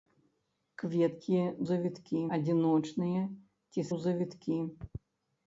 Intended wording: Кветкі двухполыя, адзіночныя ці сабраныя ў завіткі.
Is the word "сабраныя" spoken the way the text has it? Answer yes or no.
no